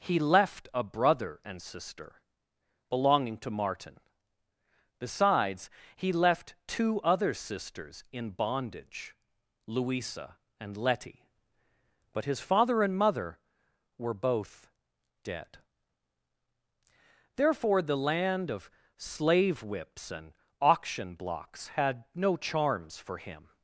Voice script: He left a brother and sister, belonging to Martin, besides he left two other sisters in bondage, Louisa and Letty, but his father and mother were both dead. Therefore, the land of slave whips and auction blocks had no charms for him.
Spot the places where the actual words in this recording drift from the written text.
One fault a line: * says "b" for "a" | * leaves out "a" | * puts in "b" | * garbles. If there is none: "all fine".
all fine